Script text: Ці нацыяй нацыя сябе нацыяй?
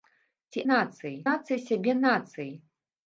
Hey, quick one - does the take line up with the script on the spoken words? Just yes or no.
yes